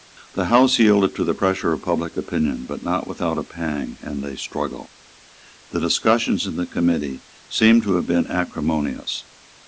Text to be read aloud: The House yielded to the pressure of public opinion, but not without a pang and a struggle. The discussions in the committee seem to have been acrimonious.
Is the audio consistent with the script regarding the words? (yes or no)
yes